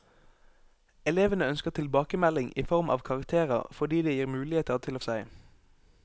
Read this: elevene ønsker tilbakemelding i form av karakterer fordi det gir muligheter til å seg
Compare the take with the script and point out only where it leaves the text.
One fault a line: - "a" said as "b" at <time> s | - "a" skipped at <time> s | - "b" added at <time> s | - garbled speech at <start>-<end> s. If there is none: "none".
none